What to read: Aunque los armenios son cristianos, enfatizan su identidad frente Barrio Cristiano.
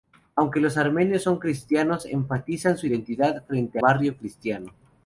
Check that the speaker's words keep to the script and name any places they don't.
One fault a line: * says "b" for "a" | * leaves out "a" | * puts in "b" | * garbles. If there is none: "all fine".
all fine